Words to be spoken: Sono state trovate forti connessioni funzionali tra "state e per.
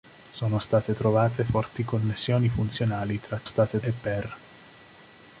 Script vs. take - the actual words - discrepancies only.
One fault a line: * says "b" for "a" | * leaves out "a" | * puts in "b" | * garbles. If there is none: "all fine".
all fine